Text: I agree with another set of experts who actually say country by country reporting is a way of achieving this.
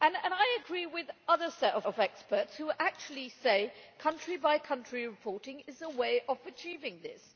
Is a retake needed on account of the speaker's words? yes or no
yes